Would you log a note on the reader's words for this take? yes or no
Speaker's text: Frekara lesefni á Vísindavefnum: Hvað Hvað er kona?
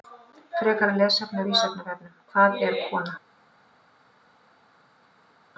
yes